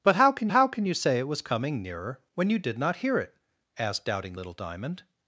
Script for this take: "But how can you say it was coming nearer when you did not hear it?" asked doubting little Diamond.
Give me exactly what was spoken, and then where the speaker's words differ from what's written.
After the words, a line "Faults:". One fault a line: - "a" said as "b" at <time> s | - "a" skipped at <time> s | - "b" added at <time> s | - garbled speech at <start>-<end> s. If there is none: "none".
"But how can how can you say it was coming nearer when you did not hear it?" asked doubting little Diamond.
Faults:
- "how can" added at 0.5 s